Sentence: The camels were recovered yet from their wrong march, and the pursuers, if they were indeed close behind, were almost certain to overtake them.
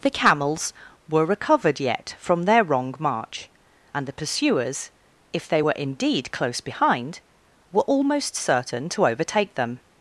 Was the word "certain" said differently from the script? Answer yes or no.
no